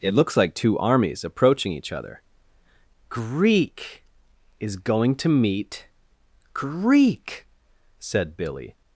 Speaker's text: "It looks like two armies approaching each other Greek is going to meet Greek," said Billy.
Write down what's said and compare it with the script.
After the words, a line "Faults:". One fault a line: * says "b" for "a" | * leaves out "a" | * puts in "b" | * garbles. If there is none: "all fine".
"It looks like two armies approaching each other Greek is going to meet Greek," said Billy.
Faults:
all fine